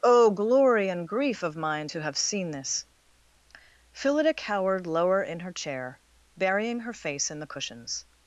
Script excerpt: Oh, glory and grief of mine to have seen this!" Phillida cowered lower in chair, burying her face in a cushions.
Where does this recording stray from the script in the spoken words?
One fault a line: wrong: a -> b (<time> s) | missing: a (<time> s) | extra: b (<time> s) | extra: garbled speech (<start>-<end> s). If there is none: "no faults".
extra: her (5.4 s)
wrong: a -> the (7.4 s)